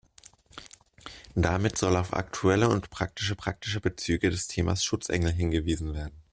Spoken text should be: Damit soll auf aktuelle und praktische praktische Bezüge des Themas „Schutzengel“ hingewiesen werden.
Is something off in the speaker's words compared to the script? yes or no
no